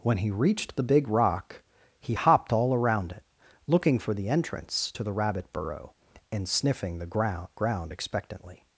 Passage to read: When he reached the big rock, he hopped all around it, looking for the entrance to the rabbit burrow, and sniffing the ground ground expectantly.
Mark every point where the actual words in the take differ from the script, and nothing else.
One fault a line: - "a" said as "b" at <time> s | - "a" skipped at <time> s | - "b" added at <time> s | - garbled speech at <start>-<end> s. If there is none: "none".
none